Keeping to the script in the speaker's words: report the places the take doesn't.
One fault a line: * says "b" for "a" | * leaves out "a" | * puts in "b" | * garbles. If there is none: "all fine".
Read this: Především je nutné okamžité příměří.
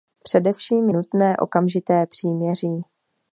* leaves out "je"